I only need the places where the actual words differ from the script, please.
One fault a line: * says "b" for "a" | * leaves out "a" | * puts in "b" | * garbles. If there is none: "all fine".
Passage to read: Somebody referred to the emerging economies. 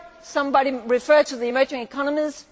all fine